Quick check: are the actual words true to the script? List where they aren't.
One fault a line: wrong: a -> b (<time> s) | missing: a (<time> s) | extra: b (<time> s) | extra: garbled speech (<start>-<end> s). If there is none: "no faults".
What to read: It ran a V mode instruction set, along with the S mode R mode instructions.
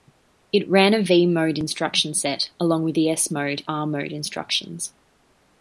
no faults